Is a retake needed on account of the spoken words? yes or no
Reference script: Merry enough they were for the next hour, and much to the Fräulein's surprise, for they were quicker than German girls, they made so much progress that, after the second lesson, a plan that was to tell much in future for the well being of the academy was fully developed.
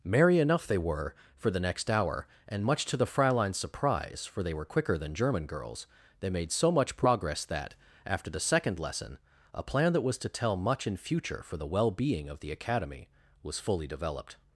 no